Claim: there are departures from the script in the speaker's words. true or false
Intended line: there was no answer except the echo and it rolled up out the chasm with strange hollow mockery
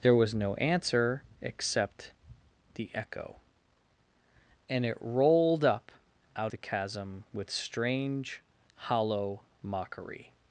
false